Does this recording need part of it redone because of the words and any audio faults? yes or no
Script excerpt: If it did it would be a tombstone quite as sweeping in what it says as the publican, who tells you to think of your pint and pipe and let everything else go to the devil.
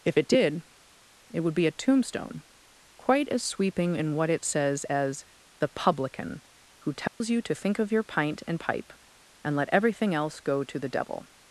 yes